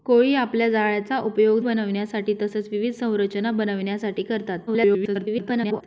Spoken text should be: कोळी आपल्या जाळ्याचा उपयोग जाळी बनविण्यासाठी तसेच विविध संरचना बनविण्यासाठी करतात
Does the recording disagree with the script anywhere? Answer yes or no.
yes